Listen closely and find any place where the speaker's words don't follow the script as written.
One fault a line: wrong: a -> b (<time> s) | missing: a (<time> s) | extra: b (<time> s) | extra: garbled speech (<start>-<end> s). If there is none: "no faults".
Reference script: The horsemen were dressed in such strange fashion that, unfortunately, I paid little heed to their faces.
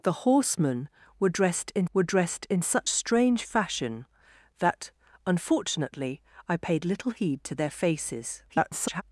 extra: were dressed in (1.9 s)
extra: garbled speech (8.5-9.0 s)